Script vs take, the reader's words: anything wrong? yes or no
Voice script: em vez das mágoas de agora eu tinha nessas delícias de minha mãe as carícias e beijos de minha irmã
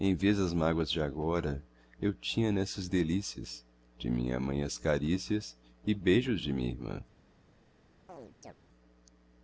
no